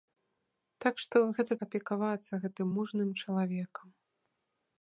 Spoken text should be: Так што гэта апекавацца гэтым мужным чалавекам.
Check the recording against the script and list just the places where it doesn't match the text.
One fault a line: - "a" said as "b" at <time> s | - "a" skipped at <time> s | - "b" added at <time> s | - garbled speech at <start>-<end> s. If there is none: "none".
none